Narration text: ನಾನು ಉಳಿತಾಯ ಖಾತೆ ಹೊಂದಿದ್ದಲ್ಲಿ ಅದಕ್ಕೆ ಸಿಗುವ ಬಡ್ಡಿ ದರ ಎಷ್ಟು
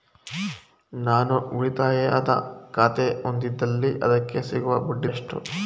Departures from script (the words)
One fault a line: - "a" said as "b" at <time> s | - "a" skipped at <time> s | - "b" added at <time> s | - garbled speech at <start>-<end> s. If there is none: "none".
- "ದರ" skipped at 5.1 s